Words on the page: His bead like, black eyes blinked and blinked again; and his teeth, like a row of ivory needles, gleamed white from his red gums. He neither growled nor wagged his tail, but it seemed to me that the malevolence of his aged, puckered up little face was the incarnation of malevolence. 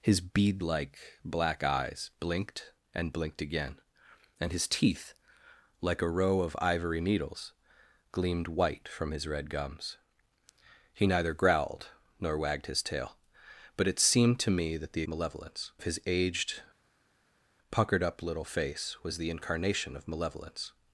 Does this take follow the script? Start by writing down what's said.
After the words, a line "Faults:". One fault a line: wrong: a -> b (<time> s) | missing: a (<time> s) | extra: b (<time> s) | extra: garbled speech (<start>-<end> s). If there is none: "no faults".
His bead like, black eyes blinked and blinked again; and his teeth, like a row of ivory needles, gleamed white from his red gums. He neither growled nor wagged his tail, but it seemed to me that the malevolence of his aged, puckered up little face was the incarnation of malevolence.
Faults:
no faults